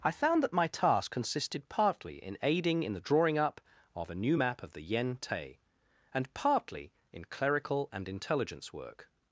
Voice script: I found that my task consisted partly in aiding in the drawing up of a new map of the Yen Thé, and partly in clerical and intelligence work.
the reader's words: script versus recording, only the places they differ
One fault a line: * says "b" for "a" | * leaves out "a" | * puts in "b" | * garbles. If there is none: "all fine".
all fine